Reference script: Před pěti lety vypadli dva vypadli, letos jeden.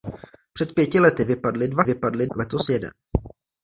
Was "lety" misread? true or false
false